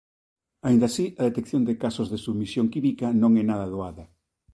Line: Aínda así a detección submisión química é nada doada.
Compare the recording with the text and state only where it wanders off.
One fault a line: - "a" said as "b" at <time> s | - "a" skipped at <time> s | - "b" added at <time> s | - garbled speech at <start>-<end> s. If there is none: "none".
- "de casos de" added at 1.6 s
- "non" added at 3.2 s